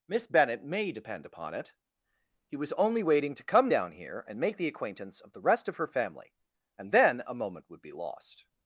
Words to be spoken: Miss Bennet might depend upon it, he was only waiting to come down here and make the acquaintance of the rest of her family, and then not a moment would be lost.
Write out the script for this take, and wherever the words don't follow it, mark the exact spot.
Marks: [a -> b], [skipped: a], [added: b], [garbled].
Miss Bennet [might -> may] depend upon it, he was only waiting to come down here and make the acquaintance of the rest of her family, and then [skipped: not] a moment would be lost.